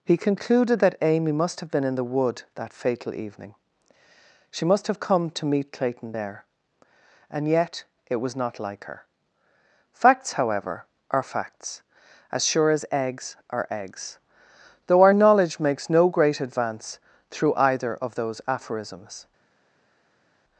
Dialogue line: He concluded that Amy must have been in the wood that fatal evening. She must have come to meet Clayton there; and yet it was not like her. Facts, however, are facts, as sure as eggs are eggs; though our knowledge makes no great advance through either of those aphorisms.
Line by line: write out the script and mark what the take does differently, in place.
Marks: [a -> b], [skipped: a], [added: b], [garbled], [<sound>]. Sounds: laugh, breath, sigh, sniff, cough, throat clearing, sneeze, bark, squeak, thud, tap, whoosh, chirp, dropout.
He concluded that Amy must have been in the wood that fatal evening. She must have come to meet Clayton there; and yet it was not like her. Facts, however, are facts, as sure as eggs are eggs; though our knowledge makes no great advance through either of those aphorisms.